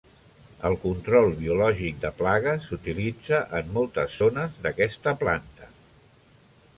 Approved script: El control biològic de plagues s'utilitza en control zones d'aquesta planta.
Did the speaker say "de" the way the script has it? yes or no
yes